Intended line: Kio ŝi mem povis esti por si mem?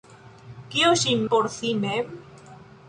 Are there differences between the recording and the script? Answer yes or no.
yes